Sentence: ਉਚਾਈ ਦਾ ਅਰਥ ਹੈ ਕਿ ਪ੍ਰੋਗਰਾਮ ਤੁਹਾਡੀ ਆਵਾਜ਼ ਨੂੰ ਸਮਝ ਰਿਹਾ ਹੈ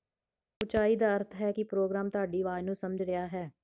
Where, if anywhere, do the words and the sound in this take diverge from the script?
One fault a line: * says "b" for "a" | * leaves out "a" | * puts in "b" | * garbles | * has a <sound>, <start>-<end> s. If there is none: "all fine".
all fine